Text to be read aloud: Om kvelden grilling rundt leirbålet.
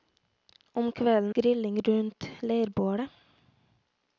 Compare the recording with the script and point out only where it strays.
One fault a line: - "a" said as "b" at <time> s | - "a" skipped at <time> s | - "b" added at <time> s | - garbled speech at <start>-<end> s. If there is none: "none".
none